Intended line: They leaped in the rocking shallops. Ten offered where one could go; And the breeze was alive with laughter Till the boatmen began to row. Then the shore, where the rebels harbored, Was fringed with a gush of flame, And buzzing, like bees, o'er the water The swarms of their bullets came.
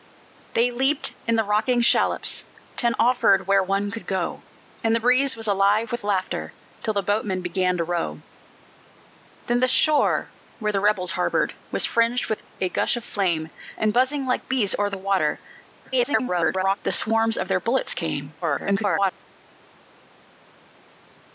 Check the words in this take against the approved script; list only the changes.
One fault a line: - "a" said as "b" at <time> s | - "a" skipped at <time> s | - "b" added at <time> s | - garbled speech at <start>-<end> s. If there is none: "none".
- garbled speech at 15.8-16.8 s
- garbled speech at 18.4-19.1 s